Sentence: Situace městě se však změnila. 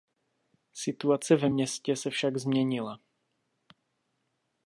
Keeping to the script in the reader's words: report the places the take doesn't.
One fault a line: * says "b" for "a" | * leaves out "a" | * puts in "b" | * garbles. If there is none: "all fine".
* puts in "ve"